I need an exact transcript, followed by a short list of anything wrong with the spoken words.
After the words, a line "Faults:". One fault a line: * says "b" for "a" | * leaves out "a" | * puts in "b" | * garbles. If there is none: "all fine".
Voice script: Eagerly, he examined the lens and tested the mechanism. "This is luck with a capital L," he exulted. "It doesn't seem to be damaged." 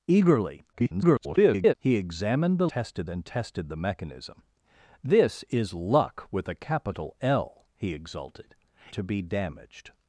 Eagerly, [garbled] he examined the tested and tested the mechanism. "This is luck with a capital L," he exulted. "To be damaged."
Faults:
* garbles
* says "tested" for "lens"
* leaves out "It doesn't seem"